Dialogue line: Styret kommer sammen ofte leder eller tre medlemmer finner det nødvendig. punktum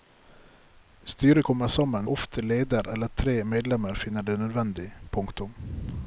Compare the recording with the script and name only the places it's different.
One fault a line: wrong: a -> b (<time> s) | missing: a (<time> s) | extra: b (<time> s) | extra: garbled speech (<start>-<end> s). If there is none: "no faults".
no faults